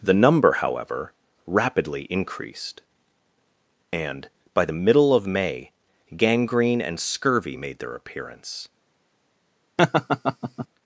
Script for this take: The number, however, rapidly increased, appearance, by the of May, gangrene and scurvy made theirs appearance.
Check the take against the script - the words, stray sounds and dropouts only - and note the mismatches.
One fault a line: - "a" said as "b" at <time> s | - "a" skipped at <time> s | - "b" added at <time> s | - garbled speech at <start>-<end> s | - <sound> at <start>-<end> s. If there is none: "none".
- "appearance" said as "and" at 3.9 s
- "middle" added at 4.7 s
- "theirs" said as "their" at 7.8 s
- laugh at 9.8-10.7 s